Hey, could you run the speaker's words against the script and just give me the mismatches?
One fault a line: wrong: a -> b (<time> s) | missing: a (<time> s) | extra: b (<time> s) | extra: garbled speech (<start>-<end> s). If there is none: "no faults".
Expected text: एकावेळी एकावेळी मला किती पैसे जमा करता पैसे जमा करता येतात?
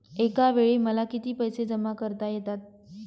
missing: एकावेळी (0.8 s)
missing: पैसे जमा करता (2.3 s)